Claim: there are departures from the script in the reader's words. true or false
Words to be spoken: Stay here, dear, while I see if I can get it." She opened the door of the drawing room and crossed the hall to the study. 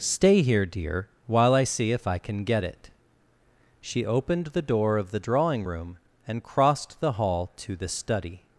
false